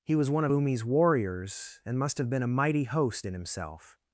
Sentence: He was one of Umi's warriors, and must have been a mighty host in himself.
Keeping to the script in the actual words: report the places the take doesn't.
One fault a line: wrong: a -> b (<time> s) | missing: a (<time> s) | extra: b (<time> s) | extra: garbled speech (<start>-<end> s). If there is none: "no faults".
no faults